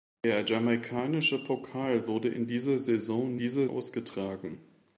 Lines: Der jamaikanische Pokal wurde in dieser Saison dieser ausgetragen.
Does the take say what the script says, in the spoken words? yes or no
yes